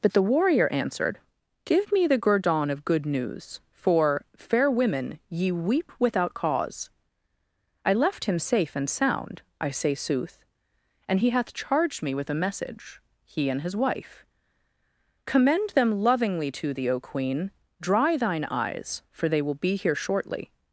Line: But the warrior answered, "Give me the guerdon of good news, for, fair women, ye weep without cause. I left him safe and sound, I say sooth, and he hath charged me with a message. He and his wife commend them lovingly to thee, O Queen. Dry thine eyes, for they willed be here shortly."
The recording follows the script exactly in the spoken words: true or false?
false